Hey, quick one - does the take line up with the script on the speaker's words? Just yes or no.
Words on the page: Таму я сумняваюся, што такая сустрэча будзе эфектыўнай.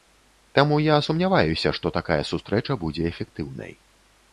yes